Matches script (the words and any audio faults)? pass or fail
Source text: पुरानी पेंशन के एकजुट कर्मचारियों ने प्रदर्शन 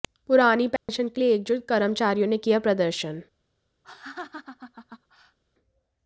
fail